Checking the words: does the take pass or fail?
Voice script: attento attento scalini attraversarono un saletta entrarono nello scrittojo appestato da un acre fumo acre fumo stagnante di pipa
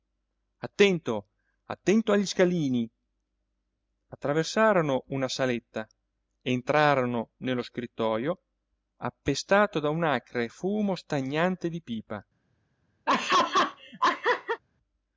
fail